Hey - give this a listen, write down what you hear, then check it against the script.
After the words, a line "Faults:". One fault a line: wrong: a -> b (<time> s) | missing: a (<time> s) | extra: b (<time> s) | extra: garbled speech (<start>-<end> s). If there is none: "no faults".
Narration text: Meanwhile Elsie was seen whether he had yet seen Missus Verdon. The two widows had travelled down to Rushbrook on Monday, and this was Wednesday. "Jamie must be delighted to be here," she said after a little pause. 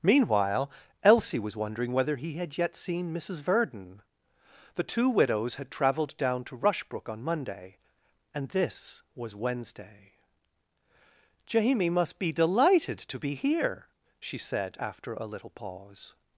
Meanwhile Elsie was wondering whether he had yet seen Missus Verdon. The two widows had travelled down to Rushbrook on Monday, and this was Wednesday. "Jamie must be delighted to be here," she said after a little pause.
Faults:
wrong: seen -> wondering (1.6 s)